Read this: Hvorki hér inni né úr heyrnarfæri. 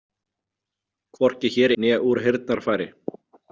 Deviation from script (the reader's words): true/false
true